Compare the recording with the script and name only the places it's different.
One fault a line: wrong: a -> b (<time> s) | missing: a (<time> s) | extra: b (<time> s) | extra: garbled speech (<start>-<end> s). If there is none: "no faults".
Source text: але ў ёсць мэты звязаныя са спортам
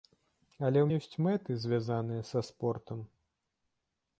no faults